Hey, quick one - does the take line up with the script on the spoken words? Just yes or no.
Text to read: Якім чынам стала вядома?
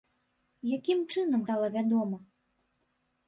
yes